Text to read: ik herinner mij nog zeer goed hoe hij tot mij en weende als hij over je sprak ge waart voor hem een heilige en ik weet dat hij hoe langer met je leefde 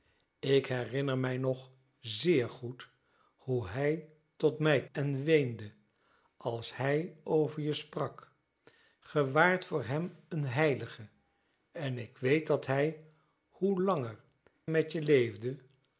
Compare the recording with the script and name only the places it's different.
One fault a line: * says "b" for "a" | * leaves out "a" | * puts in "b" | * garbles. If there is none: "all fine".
all fine